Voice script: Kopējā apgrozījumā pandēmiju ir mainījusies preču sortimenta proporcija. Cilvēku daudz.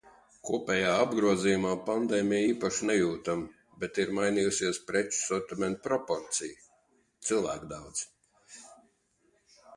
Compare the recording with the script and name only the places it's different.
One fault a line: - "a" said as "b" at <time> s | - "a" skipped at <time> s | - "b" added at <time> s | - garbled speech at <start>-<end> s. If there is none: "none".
- "īpaši nejūtam bet" added at 2.5 s